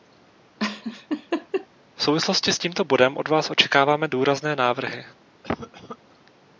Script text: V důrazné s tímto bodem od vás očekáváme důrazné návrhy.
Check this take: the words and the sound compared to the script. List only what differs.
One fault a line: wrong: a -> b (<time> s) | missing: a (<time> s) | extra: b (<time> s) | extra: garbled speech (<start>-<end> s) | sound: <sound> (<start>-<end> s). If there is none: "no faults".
sound: laugh (0.6-1.7 s)
wrong: důrazné -> souvislosti (2.0 s)
sound: cough (5.4-6.0 s)